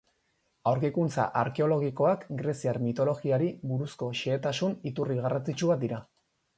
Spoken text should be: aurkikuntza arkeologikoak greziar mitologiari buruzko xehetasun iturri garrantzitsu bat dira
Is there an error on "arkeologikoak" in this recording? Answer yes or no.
no